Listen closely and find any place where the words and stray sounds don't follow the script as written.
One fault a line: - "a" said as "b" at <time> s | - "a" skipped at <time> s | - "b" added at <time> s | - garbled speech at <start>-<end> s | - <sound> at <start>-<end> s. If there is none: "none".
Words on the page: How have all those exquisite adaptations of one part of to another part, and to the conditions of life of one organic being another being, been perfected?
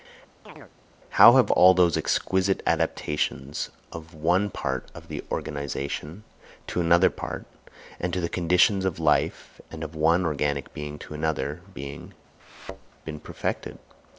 - chirp at 0.5-0.7 s
- "the organisation" added at 5.1 s
- "and" added at 9.7 s
- "to" added at 11.0 s
- thud at 12.4-12.9 s